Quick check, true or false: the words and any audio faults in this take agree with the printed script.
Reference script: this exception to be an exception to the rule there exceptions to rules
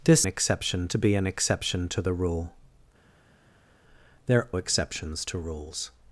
true